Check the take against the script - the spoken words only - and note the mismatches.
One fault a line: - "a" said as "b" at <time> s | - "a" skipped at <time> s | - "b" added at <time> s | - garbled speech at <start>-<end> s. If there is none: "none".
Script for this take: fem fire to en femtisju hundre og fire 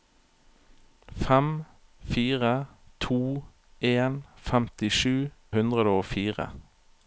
none